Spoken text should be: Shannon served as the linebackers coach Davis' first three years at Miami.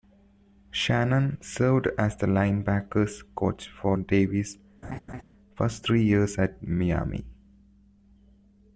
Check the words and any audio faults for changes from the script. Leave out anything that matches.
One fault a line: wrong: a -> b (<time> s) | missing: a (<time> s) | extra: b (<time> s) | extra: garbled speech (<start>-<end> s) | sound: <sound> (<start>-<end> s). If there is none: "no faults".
extra: for (3.7 s)
sound: laugh (4.8-5.2 s)